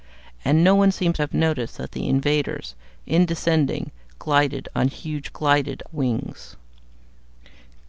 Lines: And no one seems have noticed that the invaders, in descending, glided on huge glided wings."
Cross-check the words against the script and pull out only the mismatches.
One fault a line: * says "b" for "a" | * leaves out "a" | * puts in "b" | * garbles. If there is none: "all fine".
all fine